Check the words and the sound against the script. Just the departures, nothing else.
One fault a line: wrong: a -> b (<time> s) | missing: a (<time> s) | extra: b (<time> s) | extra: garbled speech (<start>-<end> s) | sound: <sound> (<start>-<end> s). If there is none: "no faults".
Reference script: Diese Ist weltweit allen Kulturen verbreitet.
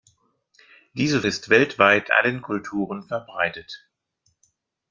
no faults